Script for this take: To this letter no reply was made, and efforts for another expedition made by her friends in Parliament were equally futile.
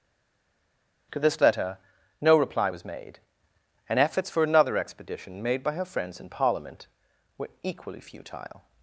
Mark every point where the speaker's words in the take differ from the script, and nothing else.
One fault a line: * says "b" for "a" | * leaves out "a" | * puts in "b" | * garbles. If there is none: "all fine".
all fine